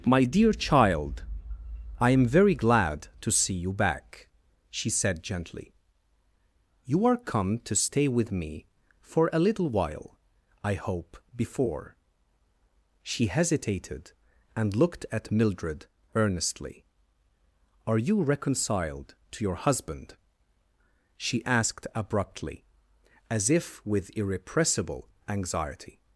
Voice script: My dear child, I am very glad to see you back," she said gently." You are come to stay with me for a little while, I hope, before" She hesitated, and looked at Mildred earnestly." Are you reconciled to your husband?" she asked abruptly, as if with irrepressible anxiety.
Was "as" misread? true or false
false